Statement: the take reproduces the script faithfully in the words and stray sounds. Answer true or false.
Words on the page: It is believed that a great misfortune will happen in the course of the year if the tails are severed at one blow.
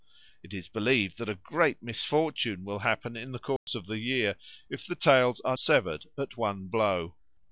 false